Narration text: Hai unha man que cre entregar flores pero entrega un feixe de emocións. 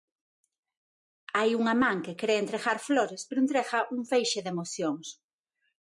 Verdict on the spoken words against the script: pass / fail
pass